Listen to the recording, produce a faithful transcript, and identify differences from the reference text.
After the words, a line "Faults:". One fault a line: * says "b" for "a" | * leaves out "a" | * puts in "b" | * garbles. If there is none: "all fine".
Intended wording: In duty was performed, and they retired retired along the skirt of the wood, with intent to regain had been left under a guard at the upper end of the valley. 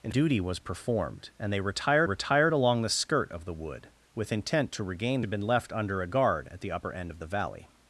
In duty was performed, and they retired retired along the skirt of the wood, with intent to regain had been left under a guard at the upper end of the valley.
Faults:
all fine